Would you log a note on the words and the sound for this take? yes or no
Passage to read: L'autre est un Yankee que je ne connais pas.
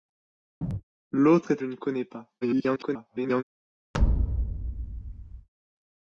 yes